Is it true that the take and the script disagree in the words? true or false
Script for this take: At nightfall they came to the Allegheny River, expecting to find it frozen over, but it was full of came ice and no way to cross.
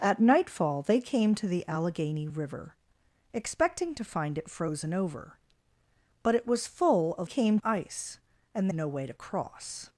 false